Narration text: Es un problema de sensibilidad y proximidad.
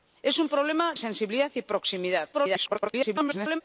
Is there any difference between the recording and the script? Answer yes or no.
yes